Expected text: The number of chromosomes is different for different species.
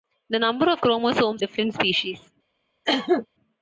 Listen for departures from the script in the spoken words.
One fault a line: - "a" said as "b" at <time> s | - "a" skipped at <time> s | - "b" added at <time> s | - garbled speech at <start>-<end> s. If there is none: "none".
- "is different for" skipped at 1.4 s